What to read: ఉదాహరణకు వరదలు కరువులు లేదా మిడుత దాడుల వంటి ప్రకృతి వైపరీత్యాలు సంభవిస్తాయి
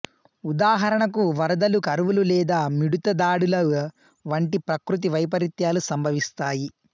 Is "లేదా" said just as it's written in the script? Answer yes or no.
yes